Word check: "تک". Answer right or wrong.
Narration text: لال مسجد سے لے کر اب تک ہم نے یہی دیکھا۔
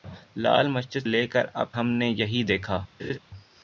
wrong